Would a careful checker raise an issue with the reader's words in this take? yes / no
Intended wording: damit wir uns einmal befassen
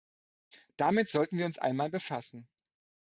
yes